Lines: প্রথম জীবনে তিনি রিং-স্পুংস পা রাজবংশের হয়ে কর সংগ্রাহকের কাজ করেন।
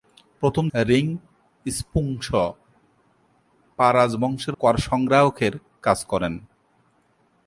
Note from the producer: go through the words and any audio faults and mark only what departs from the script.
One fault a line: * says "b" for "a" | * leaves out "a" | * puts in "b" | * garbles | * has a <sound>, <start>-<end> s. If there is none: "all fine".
* leaves out "জীবনে তিনি"
* leaves out "হয়ে"